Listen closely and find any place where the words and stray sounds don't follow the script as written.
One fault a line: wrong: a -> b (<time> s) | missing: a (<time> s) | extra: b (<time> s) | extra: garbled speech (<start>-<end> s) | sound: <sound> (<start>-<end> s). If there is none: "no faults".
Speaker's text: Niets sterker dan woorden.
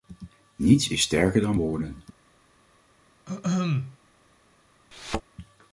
extra: is (0.9 s)
sound: throat clearing (3.3-4.0 s)
sound: thud (4.9-5.2 s)